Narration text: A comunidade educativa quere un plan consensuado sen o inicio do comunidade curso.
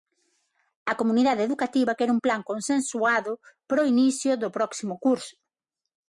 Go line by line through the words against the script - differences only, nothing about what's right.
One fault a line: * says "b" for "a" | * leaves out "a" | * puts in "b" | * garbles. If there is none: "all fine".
* says "para" for "sen"
* says "próximo" for "comunidade"